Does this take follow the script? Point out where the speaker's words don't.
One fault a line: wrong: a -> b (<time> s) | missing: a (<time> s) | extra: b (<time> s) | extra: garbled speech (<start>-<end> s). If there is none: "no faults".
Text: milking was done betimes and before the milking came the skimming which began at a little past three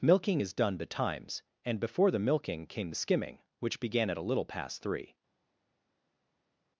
wrong: was -> is (0.4 s)